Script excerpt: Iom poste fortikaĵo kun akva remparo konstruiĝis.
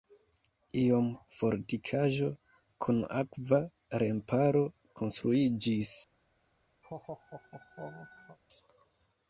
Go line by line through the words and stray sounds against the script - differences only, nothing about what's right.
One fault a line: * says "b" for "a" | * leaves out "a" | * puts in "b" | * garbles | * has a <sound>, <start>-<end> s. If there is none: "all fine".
* leaves out "poste"
* has a laugh, 6.8-8.4 s